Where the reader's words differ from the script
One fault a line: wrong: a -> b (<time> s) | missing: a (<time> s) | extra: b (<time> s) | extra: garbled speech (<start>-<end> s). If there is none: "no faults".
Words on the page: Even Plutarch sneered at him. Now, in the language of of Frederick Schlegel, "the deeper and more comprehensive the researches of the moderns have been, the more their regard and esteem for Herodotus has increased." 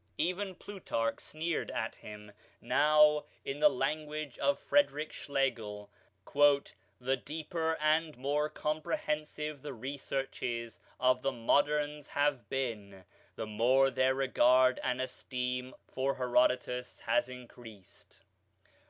missing: of (4.6 s)